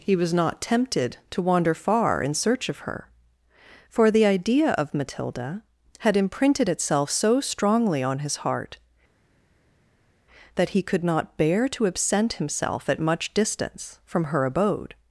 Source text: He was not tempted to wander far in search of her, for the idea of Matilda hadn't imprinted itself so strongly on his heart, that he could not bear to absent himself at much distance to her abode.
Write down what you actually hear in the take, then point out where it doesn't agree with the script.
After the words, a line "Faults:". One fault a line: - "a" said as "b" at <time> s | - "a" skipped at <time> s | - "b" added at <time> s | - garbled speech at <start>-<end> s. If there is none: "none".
He was not tempted to wander far in search of her, for the idea of Matilda had imprinted itself so strongly on his heart, that he could not bear to absent himself at much distance from her abode.
Faults:
- "hadn't" said as "had" at 6.0 s
- "to" said as "from" at 14.0 s